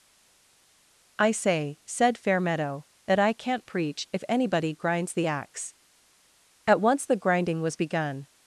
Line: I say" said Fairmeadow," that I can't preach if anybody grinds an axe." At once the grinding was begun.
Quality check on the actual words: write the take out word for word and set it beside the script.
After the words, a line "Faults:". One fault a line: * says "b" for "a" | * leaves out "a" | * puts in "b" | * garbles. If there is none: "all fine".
I say" said Fairmeadow," that I can't preach if anybody grinds the axe." At once the grinding was begun.
Faults:
* says "the" for "an"